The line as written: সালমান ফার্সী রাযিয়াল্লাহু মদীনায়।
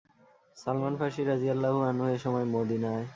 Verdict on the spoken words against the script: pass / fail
fail